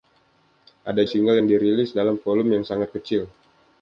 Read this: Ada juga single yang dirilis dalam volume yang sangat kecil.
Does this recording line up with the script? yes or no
no